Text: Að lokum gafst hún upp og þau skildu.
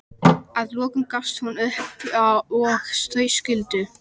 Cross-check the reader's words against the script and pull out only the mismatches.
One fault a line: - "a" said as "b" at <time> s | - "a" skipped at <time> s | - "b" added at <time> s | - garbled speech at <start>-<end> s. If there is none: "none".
none